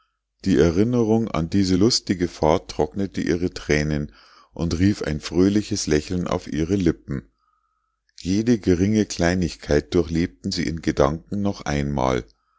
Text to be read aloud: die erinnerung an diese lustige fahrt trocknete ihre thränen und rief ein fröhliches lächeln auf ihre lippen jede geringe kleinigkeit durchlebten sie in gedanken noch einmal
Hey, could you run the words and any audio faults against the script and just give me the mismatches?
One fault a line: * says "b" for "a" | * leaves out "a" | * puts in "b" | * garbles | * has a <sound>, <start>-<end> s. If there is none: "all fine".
all fine